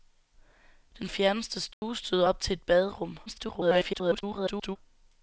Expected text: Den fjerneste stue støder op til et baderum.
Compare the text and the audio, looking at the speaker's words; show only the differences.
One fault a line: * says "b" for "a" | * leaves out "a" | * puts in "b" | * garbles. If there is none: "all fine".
* garbles